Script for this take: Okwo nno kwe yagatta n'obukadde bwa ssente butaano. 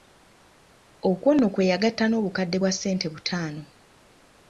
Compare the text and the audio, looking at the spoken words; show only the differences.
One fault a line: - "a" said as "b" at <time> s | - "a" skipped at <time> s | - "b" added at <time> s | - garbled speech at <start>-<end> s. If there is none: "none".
none